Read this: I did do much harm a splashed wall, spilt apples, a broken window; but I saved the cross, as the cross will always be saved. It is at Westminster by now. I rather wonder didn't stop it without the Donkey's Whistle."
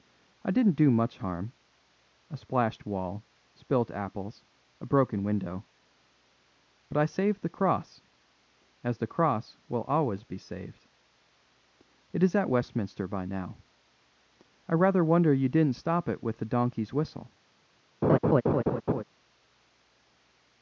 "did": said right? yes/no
no